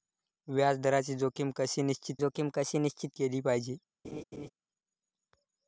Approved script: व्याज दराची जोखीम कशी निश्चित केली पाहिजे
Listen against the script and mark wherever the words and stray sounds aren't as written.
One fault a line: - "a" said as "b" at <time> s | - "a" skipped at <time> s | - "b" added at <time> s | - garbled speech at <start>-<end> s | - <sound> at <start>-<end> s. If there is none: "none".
- "जोखीम कशी निश्चित" added at 2.2 s
- laugh at 4.0-4.5 s